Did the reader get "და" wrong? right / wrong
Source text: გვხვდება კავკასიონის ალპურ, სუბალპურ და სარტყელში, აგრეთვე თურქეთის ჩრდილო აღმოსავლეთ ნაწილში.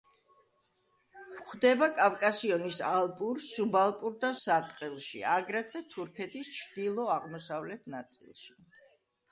right